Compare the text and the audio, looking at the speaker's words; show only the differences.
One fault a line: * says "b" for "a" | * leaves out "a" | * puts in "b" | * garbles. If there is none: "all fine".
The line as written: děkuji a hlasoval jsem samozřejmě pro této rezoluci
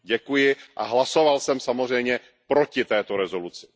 * says "proti" for "pro"